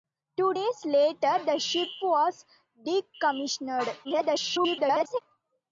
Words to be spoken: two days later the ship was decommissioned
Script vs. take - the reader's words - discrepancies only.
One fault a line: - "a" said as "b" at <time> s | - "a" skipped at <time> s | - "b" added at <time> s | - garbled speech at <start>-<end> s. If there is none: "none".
- garbled speech at 4.0-5.2 s